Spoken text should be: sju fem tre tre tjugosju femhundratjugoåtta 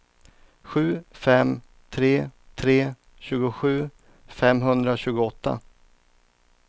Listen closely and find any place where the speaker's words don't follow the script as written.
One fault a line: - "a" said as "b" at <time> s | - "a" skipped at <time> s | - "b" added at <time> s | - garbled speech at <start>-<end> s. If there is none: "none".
none